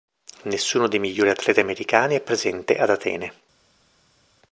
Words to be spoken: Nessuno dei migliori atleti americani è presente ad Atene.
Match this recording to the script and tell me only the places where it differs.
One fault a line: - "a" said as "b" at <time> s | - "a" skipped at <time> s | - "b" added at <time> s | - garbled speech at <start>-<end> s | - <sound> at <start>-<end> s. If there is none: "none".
none